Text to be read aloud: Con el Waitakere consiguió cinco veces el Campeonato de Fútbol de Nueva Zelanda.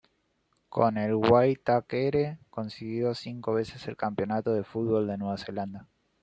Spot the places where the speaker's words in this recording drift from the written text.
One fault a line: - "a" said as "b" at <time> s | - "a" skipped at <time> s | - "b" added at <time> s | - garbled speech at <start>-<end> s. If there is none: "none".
none